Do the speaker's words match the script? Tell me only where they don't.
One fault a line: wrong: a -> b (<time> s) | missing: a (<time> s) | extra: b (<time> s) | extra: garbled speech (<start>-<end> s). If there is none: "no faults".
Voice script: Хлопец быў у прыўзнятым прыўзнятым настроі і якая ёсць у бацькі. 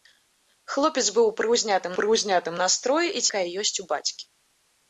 no faults